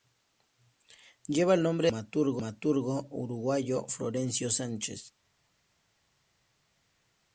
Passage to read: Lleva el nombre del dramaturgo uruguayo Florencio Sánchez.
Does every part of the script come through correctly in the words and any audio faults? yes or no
yes